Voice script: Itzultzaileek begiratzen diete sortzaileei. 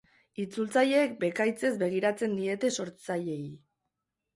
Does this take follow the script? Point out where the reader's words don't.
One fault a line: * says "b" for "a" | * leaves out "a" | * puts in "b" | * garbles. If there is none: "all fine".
* puts in "bekaitzez"